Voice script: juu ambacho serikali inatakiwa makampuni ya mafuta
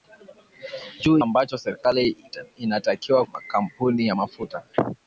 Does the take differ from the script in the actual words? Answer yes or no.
no